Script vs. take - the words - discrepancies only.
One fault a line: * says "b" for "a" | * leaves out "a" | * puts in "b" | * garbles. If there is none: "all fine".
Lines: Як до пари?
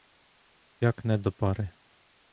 * puts in "не"